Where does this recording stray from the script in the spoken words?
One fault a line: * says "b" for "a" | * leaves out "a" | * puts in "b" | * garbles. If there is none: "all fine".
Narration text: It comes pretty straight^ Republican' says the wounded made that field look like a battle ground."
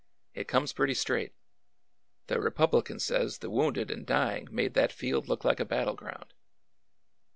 * puts in "The"
* puts in "and dying"